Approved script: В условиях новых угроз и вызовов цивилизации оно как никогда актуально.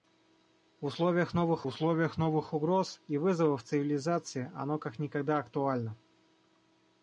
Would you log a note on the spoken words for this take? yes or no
yes